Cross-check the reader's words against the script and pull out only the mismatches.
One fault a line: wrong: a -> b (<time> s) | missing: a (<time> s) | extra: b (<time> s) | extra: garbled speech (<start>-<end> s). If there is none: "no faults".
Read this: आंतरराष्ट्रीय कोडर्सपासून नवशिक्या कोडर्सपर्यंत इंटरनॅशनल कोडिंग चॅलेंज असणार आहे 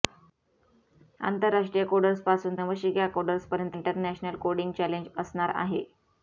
no faults